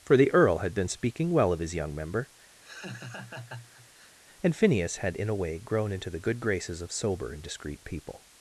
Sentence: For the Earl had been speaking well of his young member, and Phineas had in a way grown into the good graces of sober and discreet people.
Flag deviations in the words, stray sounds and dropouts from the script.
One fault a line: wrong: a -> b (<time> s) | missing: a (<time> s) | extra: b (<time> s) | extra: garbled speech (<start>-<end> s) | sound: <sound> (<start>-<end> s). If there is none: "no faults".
sound: laugh (2.6-4.2 s)